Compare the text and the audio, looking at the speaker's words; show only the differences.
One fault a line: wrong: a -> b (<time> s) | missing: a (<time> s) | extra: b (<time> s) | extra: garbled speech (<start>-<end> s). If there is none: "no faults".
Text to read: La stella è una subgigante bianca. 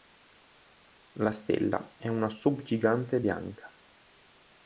no faults